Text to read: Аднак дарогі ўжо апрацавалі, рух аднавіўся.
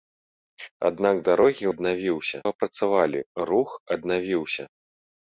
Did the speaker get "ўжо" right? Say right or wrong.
wrong